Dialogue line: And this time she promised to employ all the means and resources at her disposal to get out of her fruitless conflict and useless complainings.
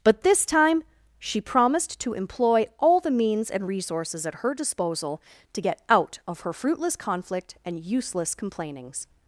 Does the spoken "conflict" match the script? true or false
true